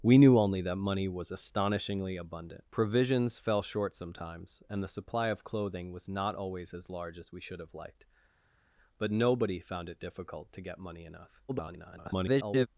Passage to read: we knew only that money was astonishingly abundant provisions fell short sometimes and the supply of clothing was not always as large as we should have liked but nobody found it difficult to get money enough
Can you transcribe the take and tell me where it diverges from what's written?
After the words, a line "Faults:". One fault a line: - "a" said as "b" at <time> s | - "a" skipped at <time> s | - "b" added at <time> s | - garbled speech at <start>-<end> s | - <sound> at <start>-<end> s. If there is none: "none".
we knew only that money was astonishingly abundant provisions fell short sometimes and the supply of clothing was not always as large as we should have liked but nobody found it difficult to get money enough [garbled]
Faults:
- garbled speech at 11.5-12.7 s